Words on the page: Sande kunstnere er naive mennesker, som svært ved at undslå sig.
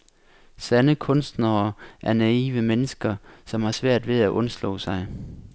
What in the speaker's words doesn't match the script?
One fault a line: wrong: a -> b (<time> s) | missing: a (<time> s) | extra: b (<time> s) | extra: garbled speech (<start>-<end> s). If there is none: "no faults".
extra: har (3.6 s)